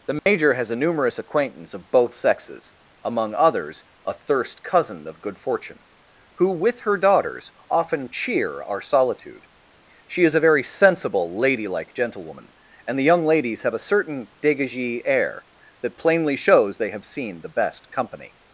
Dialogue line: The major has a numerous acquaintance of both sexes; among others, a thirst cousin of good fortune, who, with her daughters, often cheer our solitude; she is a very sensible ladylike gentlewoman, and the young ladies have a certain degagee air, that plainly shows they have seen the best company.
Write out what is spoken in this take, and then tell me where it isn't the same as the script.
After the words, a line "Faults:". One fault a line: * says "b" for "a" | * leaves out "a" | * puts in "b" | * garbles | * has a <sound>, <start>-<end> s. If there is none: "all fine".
The major has a numerous acquaintance of both sexes; among others, a thirst cousin of good fortune, who, with her daughters, often cheer our solitude; she is a very sensible ladylike gentlewoman, and the young ladies have a certain degagee air, that plainly shows they have seen the best company.
Faults:
* has a dropout, 0.2-0.3 s